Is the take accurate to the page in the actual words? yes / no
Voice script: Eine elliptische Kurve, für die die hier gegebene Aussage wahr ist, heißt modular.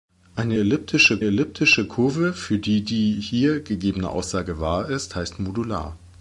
no